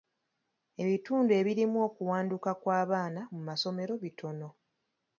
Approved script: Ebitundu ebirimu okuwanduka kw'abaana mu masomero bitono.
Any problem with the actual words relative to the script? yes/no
no